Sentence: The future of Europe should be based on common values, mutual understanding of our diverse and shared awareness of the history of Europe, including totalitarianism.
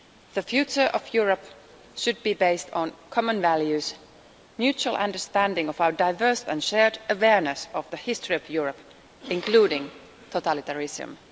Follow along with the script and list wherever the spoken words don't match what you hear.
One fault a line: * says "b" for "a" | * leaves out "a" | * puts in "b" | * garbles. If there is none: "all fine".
all fine